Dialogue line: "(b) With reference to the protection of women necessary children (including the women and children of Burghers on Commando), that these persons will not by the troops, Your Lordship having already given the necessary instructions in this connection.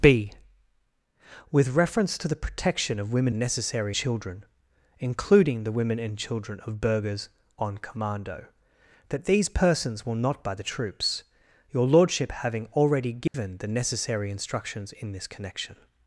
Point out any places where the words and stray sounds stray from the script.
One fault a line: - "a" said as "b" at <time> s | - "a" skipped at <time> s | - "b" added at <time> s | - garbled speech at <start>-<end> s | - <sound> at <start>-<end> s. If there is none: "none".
- dropout at 13.3-13.3 s